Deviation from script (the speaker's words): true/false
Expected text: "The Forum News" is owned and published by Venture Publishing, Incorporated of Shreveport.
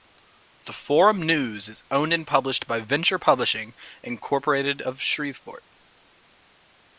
false